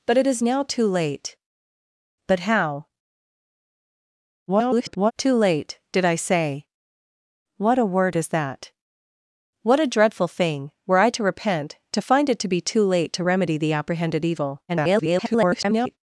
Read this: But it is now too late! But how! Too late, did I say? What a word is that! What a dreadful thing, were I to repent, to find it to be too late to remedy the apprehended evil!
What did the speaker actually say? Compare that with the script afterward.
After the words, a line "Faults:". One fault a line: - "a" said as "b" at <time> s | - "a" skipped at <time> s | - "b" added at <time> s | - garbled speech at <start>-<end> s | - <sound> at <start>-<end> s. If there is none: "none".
But it is now too late! But how! [garbled] Too late, did I say? What a word is that! What a dreadful thing, were I to repent, to find it to be too late to remedy the apprehended evil! [garbled]
Faults:
- garbled speech at 4.5-5.1 s
- garbled speech at 14.7-16.0 s